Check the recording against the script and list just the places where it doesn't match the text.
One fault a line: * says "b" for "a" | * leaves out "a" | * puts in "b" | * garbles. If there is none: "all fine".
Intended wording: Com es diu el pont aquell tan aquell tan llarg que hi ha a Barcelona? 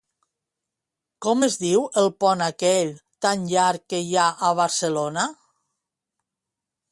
* leaves out "aquell tan"